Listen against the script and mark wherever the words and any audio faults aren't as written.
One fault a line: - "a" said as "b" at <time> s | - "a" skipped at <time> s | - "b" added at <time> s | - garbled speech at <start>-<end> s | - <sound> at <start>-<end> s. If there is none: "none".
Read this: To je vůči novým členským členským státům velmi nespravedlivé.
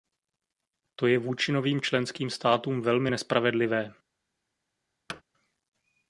- "členským" skipped at 2.3 s
- thud at 5.1-5.2 s